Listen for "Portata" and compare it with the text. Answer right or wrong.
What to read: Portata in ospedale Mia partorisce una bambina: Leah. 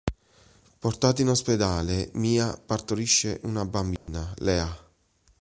right